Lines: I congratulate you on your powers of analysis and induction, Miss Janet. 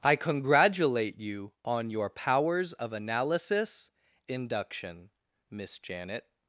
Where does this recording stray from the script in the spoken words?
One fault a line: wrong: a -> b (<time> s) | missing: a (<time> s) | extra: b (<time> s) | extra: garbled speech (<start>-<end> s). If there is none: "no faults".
missing: and (3.9 s)